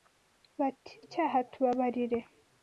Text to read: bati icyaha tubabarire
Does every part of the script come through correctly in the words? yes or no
yes